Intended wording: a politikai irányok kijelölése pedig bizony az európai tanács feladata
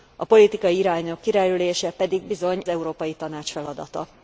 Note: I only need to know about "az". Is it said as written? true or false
false